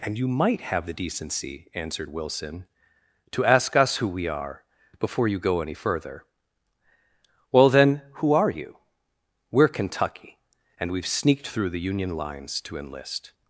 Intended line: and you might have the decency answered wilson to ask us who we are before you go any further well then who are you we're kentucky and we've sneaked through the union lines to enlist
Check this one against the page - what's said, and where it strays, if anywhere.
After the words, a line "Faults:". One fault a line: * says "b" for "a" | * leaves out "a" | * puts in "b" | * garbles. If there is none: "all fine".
and you might have the decency answered wilson to ask us who we are before you go any further well then who are you we're kentucky and we've sneaked through the union lines to enlist
Faults:
all fine